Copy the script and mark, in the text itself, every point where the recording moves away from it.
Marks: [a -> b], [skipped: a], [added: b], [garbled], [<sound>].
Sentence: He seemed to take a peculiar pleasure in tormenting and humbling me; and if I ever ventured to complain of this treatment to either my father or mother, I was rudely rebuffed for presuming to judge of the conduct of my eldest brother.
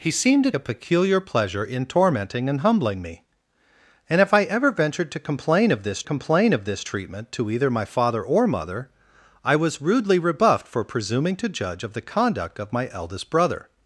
He seemed to [skipped: take] a peculiar pleasure in tormenting and humbling me; and if I ever ventured to complain of this [added: complain of this] treatment to either my father or mother, I was rudely rebuffed for presuming to judge of the conduct of my eldest brother.